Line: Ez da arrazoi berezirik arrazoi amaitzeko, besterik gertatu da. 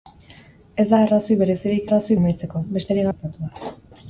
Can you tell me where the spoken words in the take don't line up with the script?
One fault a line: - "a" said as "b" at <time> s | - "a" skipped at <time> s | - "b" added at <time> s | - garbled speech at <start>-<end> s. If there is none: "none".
none